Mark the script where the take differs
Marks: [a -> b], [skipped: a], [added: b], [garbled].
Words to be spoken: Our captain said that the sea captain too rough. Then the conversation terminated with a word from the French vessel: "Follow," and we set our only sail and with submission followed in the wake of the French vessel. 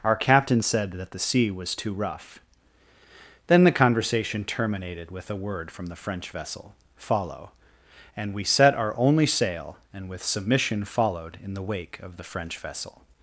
Our captain said that the sea [captain -> was] too rough. Then the conversation terminated with a word from the French vessel: "Follow," and we set our only sail and with submission followed in the wake of the French vessel.